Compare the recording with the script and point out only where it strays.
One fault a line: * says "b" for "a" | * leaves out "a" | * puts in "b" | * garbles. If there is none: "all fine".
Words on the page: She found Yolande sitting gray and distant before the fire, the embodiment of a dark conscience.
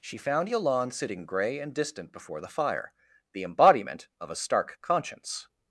* says "stark" for "dark"